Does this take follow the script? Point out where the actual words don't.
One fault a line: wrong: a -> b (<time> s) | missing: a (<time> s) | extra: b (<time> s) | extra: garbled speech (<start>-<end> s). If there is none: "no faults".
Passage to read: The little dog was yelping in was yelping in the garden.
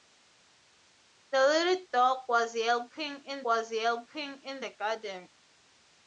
no faults